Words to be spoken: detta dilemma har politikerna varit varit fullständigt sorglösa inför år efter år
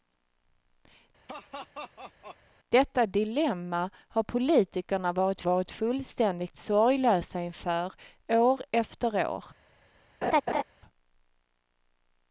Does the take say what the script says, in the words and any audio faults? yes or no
no